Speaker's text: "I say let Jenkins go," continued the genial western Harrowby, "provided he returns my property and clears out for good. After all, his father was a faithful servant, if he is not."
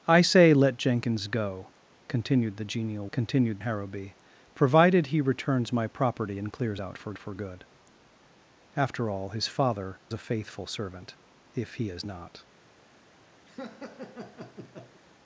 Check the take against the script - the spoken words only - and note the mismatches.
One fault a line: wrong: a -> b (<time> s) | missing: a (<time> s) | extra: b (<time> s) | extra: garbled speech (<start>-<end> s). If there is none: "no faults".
wrong: western -> continued (3.1 s)
extra: for (7.2 s)
missing: was (10.0 s)